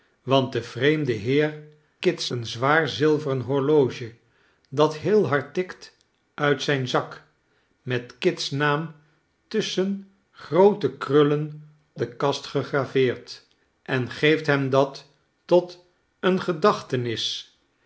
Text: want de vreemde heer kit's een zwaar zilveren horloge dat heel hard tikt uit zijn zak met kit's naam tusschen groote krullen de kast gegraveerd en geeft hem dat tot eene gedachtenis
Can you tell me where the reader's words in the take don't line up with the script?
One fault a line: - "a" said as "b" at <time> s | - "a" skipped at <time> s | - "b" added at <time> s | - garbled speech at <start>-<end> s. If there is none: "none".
none